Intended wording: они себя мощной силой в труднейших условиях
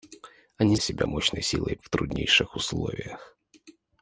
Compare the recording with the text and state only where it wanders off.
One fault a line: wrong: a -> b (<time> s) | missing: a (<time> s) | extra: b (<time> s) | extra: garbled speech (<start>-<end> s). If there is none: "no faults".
no faults